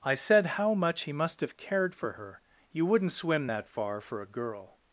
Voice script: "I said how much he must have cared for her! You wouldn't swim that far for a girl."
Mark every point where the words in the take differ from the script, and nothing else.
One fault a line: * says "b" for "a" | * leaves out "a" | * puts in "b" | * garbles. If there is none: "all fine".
all fine